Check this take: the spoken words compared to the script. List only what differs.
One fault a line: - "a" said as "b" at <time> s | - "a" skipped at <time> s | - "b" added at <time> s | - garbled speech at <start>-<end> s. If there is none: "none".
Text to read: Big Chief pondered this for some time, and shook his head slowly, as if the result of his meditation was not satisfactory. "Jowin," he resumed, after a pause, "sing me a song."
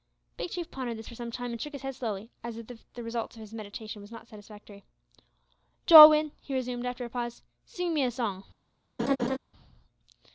none